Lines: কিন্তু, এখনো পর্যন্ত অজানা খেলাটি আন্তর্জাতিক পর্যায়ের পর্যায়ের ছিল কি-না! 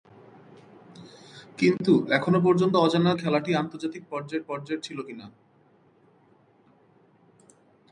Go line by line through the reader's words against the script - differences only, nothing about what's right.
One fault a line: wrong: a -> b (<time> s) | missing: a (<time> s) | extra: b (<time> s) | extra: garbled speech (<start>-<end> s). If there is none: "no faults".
no faults